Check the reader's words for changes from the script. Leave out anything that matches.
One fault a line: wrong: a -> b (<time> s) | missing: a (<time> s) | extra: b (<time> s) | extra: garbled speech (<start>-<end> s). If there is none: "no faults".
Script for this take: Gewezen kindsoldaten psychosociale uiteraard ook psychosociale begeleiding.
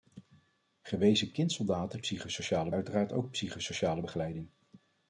no faults